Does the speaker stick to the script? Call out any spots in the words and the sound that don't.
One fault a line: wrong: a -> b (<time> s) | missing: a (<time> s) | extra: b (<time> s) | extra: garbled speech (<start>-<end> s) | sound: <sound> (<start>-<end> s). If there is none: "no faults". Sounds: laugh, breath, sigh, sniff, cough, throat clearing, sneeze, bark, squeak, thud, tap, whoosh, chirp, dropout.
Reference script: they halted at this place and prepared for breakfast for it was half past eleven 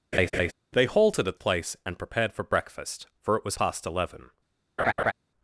sound: laugh (0.1-0.5 s)
missing: this (1.4 s)
missing: half (3.6 s)
sound: laugh (4.8-5.1 s)